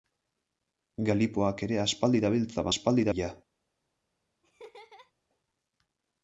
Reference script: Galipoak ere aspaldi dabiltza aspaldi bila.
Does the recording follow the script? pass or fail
pass